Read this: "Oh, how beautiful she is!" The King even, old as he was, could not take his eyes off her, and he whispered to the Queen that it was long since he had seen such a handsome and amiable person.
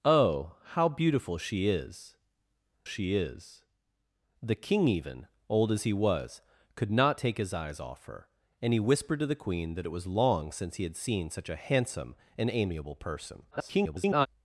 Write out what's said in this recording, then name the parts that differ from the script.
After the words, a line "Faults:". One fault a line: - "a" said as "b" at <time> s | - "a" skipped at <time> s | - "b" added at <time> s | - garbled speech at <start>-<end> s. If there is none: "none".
"Oh, how beautiful she is she is!" The King even, old as he was, could not take his eyes off her, and he whispered to the Queen that it was long since he had seen such a handsome and amiable person. [garbled]
Faults:
- "she is" added at 2.8 s
- garbled speech at 13.5-14.3 s